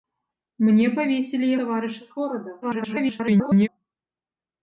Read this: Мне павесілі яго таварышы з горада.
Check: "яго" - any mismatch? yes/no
yes